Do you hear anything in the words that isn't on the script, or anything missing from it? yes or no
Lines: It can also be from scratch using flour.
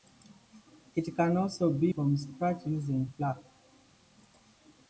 no